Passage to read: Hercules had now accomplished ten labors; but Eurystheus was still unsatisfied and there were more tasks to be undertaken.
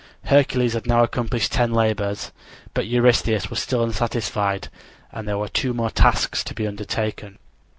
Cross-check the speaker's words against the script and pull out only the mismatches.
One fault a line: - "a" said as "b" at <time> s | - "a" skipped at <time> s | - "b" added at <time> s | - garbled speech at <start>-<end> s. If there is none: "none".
- "two" added at 5.5 s